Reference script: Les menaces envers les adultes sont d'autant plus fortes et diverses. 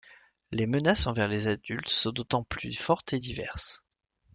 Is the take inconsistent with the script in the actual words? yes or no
no